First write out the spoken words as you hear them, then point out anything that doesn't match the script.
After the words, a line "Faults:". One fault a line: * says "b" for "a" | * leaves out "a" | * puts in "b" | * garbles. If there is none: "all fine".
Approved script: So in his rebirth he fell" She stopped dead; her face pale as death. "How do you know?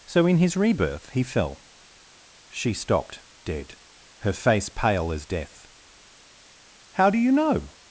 So in his rebirth he fell" She stopped dead; her face pale as death. "How do you know?
Faults:
all fine